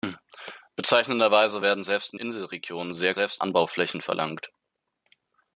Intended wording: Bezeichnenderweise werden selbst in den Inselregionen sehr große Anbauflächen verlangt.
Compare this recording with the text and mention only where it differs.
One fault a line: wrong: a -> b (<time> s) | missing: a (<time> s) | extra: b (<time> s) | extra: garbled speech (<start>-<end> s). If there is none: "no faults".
missing: den (2.2 s)
wrong: große -> selbst (3.1 s)